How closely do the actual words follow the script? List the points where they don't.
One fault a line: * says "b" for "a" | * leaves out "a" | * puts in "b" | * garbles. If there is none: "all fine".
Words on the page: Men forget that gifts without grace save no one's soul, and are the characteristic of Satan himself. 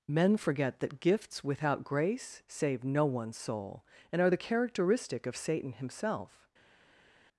all fine